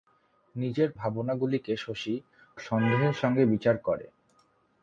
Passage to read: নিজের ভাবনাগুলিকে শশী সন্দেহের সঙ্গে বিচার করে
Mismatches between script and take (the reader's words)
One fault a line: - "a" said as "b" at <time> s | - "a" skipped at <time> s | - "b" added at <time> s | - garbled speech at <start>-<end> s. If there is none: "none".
none